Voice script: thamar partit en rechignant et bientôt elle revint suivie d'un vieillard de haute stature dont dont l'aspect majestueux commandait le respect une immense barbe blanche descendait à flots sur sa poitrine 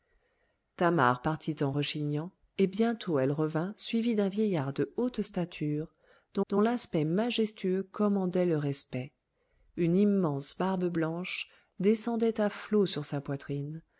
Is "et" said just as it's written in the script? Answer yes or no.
yes